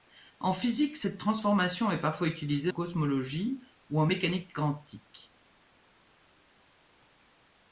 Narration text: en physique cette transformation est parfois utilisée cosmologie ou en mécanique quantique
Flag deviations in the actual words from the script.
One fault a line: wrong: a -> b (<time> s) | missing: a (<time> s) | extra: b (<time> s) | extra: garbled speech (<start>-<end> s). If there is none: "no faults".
no faults